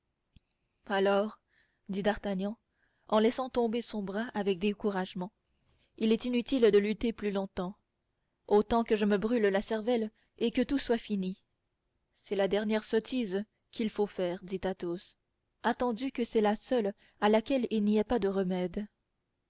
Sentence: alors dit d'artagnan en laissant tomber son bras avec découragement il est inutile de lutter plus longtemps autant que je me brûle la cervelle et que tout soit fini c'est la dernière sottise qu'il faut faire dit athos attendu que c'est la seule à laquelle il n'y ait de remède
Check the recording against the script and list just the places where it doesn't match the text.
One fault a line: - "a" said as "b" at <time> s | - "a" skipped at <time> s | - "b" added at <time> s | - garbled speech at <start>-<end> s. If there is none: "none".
- "pas" added at 18.0 s